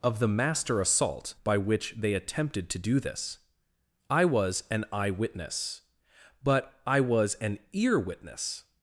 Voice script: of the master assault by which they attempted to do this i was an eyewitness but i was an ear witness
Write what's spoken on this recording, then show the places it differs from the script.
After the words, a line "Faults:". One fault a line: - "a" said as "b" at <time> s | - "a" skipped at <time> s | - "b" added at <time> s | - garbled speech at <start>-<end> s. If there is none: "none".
of the master assault by which they attempted to do this i was an eyewitness but i was an ear witness
Faults:
none